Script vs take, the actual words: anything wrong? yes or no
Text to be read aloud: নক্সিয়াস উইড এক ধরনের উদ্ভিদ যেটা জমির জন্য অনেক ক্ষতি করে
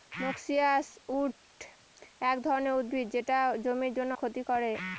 yes